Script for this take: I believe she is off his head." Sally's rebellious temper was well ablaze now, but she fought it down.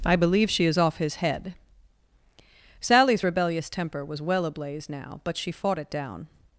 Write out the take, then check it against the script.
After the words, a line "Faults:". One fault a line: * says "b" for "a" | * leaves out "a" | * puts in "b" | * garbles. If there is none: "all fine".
I believe she is off his head." Sally's rebellious temper was well ablaze now, but she fought it down.
Faults:
all fine